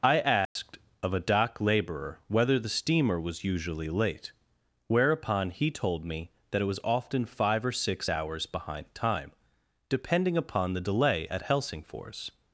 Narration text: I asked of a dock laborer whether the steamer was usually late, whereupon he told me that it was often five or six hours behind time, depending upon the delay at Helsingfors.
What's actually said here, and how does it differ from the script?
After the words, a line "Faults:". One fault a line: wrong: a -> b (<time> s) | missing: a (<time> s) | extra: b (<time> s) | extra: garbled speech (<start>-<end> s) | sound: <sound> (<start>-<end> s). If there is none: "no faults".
I asked of a dock laborer whether the steamer was usually late, whereupon he told me that it was often five or six hours behind time, depending upon the delay at Helsingfors.
Faults:
sound: dropout (0.5-0.6 s)